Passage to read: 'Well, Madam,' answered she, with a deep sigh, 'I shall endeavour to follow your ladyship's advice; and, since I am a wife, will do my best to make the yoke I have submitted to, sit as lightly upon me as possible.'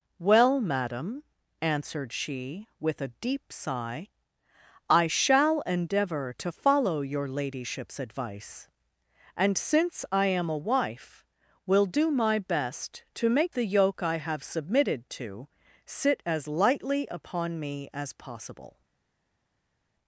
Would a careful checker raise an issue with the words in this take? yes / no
no